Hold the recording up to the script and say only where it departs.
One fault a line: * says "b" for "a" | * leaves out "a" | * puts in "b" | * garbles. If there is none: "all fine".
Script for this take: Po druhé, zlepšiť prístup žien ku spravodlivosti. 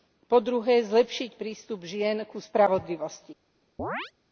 all fine